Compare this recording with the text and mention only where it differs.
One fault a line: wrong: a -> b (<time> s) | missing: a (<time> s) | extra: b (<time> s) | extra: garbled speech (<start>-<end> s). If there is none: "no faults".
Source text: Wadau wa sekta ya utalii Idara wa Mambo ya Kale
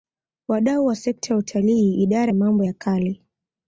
no faults